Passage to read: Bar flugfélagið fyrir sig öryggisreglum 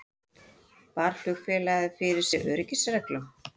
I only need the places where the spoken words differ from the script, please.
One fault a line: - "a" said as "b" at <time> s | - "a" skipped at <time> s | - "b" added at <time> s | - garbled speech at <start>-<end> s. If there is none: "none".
none